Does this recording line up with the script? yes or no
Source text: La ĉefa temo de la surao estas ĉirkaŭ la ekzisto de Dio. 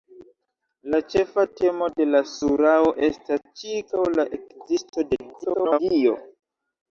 no